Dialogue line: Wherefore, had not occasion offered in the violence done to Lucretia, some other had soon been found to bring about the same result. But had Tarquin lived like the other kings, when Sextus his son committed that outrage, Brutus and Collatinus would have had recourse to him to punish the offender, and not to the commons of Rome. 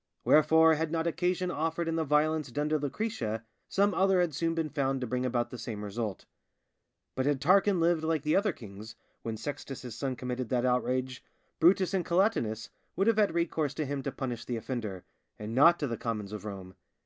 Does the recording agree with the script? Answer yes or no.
yes